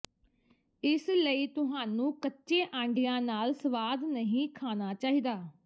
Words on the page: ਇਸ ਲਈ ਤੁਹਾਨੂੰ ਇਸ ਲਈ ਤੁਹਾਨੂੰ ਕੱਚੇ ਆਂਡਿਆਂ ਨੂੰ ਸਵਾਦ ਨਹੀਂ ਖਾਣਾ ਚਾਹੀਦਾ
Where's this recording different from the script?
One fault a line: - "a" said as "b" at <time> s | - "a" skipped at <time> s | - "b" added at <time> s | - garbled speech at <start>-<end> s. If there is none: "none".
- "ਇਸ ਲਈ ਤੁਹਾਨੂੰ" skipped at 2.1 s
- "ਨੂੰ" said as "ਨਾਲ" at 3.2 s